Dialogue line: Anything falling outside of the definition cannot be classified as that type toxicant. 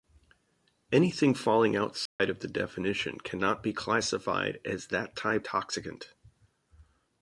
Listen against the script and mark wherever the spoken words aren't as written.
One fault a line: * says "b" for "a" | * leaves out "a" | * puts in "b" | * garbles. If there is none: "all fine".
all fine